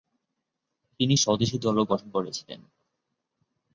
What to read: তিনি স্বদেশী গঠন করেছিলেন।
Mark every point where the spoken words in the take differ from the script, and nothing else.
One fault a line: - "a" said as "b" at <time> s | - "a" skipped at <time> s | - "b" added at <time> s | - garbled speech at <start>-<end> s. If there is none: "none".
- "দলও" added at 1.6 s